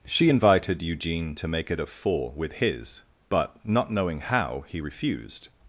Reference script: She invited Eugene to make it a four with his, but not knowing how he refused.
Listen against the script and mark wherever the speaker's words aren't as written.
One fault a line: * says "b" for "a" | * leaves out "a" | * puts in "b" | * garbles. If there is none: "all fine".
all fine